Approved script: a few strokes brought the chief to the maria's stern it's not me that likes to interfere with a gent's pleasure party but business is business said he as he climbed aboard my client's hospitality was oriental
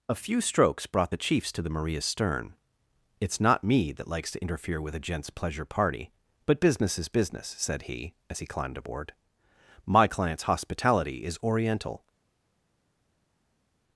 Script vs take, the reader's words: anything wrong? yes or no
yes